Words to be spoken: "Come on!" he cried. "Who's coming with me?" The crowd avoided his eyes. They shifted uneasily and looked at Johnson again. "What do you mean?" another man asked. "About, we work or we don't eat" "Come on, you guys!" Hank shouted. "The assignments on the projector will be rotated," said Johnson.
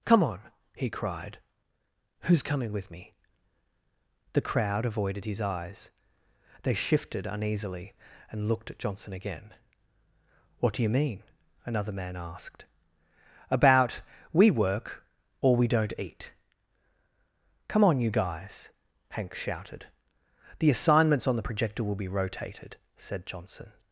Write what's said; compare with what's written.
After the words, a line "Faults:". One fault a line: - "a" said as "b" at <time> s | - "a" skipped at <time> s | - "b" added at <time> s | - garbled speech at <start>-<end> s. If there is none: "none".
"Come on!" he cried. "Who's coming with me?" The crowd avoided his eyes. They shifted uneasily and looked at Johnson again. "What do you mean?" another man asked. "About, we work or we don't eat" "Come on, you guys!" Hank shouted. "The assignments on the projector will be rotated," said Johnson.
Faults:
none